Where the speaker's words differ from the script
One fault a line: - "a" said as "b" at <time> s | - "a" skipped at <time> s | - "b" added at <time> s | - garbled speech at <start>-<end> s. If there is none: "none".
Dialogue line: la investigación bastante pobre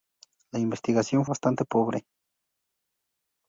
none